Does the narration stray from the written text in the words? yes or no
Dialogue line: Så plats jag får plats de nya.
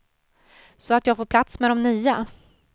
yes